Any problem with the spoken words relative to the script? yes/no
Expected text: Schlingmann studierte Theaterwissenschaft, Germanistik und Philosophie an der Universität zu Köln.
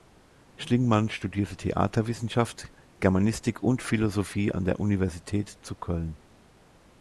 no